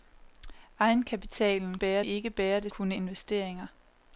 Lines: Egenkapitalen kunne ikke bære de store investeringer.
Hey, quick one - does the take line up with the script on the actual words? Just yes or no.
no